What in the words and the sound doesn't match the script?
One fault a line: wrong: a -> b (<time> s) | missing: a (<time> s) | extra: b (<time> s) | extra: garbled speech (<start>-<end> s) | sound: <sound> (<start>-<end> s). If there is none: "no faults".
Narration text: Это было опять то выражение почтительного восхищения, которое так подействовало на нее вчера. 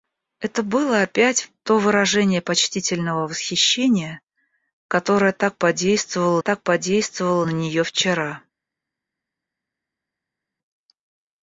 extra: так подействовало (6.4 s)